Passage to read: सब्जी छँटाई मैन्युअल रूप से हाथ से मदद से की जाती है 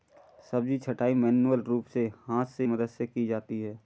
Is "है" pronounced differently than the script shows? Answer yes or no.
no